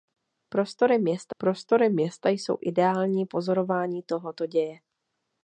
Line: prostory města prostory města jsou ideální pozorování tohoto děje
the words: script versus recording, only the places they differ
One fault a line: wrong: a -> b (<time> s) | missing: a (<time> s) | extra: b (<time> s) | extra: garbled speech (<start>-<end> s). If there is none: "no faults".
no faults